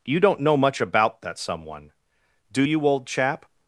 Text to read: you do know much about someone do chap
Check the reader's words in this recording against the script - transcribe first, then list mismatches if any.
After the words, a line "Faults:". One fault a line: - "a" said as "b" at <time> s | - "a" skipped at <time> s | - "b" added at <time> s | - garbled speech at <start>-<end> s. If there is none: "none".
you don't know much about that someone do you old chap
Faults:
- "do" said as "don't" at 0.2 s
- "that" added at 1.2 s
- "you old" added at 2.6 s